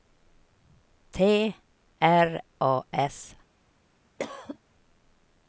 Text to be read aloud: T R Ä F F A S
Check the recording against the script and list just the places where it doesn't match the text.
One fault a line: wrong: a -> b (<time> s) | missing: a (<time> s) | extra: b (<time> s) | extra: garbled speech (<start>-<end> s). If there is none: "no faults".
missing: Ä F F (2.4 s)